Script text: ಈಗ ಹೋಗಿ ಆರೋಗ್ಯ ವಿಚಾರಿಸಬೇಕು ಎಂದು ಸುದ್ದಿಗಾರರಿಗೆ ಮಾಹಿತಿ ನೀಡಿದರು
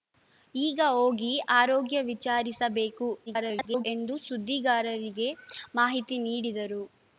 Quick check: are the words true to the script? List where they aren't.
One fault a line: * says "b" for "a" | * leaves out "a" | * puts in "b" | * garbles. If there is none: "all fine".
* garbles